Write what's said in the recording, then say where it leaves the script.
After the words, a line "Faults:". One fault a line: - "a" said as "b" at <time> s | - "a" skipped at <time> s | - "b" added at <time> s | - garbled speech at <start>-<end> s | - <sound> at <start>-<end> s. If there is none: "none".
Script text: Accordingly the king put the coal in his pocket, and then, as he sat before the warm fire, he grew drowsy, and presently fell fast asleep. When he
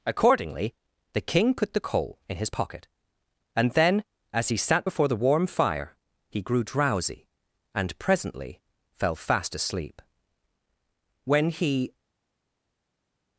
Accordingly the king put the coal in his pocket, and then, as he sat before the warm fire, he grew drowsy, and presently fell fast asleep. When he
Faults:
none